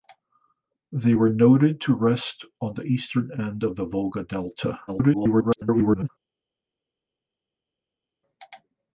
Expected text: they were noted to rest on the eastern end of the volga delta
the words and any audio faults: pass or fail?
fail